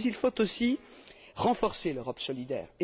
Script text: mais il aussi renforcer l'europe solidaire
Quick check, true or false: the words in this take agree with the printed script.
false